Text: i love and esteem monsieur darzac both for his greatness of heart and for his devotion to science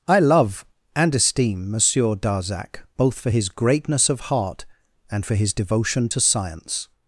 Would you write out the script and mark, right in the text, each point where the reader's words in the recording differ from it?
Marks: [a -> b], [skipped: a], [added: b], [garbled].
i love and esteem monsieur darzac both for his greatness of heart and for his devotion to science